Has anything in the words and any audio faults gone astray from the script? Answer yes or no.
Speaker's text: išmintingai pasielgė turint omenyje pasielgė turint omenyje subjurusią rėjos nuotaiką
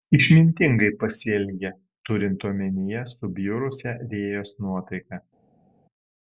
yes